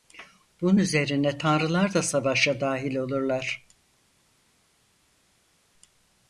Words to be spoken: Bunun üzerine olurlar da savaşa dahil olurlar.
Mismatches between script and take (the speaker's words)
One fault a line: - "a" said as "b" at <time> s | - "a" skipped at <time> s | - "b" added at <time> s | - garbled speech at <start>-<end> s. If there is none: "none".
- "olurlar" said as "tanrılar" at 1.4 s